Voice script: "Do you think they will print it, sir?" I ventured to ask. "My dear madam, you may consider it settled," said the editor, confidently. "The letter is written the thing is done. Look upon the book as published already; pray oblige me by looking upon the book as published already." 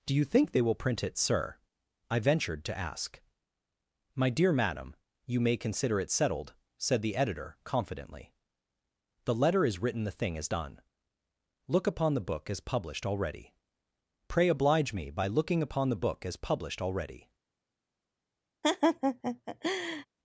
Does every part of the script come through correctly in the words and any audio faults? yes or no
no